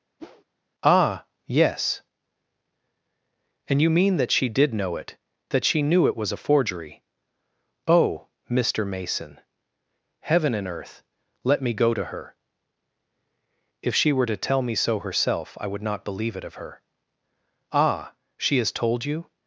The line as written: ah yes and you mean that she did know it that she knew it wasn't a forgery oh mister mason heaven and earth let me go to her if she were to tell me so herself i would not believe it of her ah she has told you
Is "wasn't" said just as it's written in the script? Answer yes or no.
no